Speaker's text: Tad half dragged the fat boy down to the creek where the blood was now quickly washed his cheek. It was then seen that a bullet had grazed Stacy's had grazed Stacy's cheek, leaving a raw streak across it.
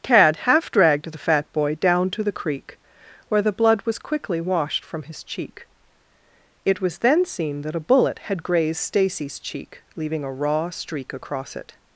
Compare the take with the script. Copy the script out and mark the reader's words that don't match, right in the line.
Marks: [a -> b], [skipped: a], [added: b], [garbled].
Tad half dragged the fat boy down to the creek where the blood was [skipped: now] quickly washed [added: from] his cheek. It was then seen that a bullet had grazed Stacy's [skipped: had grazed Stacy's] cheek, leaving a raw streak across it.